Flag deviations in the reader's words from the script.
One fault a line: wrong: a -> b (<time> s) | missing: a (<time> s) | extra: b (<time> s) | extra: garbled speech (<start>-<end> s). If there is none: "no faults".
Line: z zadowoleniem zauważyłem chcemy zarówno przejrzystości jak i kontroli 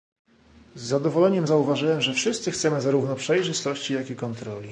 extra: że wszyscy (2.0 s)